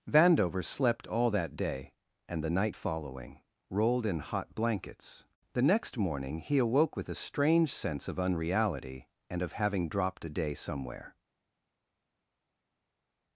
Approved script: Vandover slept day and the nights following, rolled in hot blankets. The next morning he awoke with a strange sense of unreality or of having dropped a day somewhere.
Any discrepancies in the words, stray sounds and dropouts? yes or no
yes